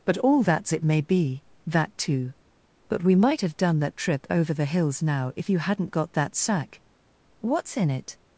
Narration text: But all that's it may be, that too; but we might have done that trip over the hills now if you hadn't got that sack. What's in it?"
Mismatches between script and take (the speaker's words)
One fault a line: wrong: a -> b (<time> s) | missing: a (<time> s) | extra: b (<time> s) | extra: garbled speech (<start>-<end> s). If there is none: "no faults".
no faults